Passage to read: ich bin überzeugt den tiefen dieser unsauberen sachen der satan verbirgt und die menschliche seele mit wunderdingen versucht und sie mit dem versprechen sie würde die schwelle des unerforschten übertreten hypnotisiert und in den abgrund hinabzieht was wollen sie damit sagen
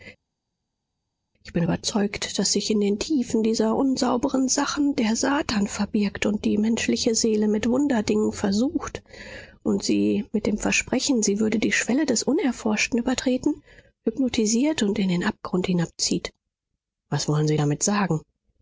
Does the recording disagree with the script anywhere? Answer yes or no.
yes